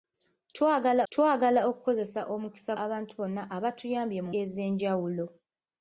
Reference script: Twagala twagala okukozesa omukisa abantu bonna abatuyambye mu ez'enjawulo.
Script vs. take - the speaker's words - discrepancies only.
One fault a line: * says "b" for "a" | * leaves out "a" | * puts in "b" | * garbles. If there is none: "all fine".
all fine